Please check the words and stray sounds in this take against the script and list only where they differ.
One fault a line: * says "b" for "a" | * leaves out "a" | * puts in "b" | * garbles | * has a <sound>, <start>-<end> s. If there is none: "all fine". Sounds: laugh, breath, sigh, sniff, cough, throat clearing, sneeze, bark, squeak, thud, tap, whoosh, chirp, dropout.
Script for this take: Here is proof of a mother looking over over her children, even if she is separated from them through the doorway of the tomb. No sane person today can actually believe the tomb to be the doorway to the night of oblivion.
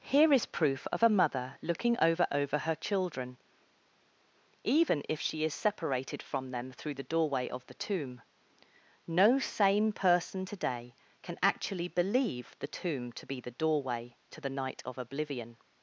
all fine